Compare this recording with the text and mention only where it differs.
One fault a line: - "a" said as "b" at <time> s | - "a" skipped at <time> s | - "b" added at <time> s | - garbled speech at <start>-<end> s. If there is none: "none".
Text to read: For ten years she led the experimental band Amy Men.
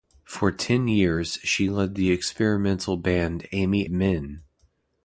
none